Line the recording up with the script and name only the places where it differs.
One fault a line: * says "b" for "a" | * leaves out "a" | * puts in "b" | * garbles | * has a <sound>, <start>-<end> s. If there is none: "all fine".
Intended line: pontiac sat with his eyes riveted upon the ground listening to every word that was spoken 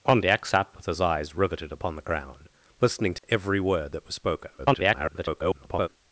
* has a dropout, 3.2-3.2 s
* garbles